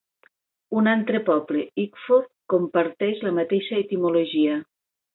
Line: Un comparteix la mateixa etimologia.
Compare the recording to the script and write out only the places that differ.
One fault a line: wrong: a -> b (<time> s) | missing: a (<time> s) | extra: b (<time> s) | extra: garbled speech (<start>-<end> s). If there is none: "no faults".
extra: altre poble Ickford (0.9 s)